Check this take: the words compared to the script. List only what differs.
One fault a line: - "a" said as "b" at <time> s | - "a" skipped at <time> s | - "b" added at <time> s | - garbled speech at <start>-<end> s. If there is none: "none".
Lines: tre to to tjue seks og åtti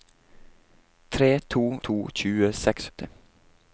none